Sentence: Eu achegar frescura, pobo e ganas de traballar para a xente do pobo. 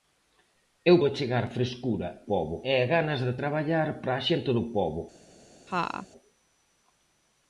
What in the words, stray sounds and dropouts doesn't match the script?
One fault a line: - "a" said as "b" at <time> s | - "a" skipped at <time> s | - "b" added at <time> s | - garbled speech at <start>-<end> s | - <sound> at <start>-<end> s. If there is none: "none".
- laugh at 5.7-6.1 s